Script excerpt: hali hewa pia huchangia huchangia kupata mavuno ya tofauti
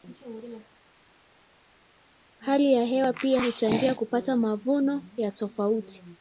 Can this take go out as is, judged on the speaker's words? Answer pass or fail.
fail